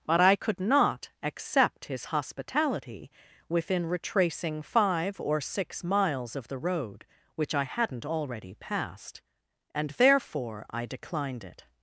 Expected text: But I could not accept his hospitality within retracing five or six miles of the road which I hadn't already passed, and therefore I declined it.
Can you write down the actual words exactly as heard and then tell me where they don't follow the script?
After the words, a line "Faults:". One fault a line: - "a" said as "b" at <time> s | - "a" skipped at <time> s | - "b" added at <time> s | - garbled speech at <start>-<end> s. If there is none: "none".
But I could not accept his hospitality within retracing five or six miles of the road which I hadn't already passed, and therefore I declined it.
Faults:
none